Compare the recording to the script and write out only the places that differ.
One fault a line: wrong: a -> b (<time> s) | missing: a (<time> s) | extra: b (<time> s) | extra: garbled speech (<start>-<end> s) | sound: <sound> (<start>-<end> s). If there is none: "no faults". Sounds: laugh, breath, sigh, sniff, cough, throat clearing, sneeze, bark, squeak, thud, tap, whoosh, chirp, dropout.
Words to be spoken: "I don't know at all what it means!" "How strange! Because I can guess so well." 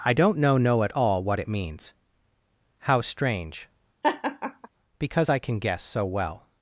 extra: know (0.6 s)
sound: laugh (4.0-4.7 s)